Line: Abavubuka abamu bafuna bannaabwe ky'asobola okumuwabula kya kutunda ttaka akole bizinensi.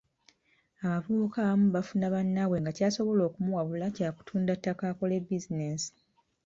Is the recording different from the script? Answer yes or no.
yes